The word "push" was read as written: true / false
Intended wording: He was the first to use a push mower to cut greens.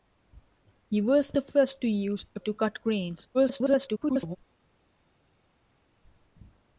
false